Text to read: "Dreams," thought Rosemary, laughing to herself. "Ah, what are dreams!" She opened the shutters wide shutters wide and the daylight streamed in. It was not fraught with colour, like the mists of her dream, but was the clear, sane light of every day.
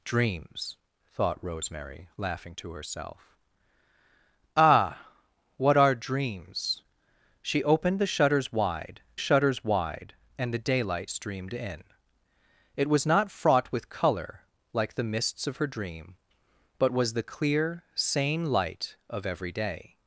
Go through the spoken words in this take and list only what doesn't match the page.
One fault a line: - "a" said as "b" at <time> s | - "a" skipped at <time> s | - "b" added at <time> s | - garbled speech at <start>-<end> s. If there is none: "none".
none